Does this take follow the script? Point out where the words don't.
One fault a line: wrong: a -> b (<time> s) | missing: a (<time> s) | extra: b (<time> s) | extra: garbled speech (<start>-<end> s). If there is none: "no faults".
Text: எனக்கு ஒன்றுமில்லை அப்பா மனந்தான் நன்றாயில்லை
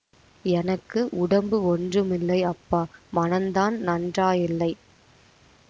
extra: உடம்பு (1.1 s)